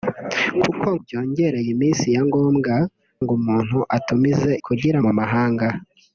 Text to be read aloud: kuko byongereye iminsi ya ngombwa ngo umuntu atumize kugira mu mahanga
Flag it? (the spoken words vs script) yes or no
no